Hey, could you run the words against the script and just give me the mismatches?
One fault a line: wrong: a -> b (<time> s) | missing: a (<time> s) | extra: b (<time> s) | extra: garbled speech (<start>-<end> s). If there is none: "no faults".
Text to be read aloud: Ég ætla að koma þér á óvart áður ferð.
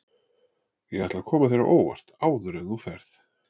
extra: en þú (2.6 s)